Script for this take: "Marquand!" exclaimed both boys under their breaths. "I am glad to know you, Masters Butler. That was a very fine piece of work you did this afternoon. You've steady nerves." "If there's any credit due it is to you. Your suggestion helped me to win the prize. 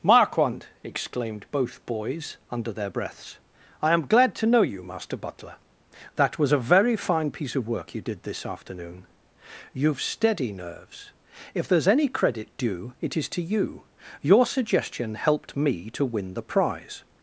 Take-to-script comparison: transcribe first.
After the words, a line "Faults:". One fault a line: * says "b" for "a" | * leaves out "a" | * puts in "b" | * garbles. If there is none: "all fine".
"Marquand!" exclaimed both boys under their breaths. "I am glad to know you, Master Butler. That was a very fine piece of work you did this afternoon. You've steady nerves." "If there's any credit due it is to you. Your suggestion helped me to win the prize.
Faults:
* says "Master" for "Masters"